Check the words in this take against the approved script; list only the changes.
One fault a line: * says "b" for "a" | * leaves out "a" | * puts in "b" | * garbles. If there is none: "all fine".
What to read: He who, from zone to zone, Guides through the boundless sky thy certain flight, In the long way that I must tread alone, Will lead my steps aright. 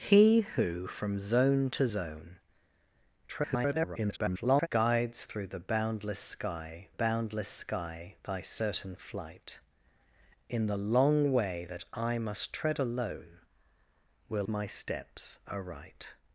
* garbles
* puts in "boundless sky"
* leaves out "lead"